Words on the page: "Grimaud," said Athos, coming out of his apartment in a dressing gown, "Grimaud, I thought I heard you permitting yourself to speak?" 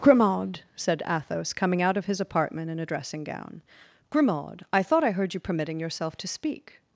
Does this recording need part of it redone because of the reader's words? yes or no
no